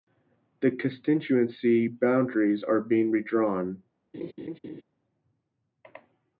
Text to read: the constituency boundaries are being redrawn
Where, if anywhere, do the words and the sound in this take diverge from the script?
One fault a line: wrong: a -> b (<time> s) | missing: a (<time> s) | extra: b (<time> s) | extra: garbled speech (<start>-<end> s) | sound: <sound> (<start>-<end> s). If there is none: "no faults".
sound: laugh (4.1-4.8 s)